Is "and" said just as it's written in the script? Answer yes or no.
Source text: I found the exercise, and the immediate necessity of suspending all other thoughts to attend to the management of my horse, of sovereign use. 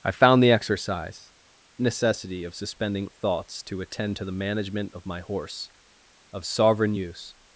no